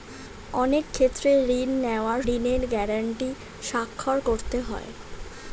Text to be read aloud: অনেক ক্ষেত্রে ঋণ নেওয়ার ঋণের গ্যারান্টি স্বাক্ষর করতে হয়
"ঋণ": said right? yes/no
yes